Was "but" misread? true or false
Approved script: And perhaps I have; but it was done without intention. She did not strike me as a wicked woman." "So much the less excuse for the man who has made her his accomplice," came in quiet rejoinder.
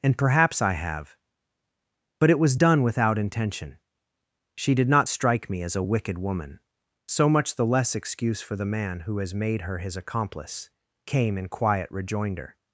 false